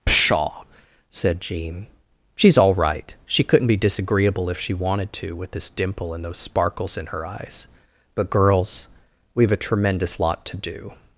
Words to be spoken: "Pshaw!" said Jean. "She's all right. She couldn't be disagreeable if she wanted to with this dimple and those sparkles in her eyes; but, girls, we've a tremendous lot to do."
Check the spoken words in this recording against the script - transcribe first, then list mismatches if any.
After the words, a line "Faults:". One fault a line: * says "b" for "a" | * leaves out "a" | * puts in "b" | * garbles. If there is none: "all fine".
"Pshaw!" said Jean. "She's all right. She couldn't be disagreeable if she wanted to with this dimple and those sparkles in her eyes; but, girls, we've a tremendous lot to do."
Faults:
all fine